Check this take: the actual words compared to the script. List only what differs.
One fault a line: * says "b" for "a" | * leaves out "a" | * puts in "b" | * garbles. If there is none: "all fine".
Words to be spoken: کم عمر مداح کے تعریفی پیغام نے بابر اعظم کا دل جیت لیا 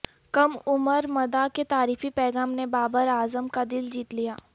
all fine